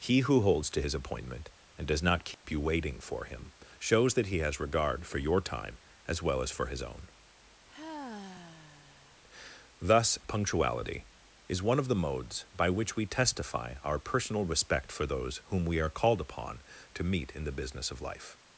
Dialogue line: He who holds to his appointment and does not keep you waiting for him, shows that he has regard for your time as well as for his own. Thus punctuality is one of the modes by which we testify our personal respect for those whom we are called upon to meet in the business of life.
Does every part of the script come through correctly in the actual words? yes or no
yes